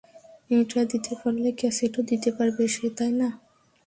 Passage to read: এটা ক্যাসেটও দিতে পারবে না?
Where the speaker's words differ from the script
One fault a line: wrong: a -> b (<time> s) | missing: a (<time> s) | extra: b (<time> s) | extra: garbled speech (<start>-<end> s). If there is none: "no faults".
extra: দিতে পারলে (0.9 s)
extra: সে তাই (2.7 s)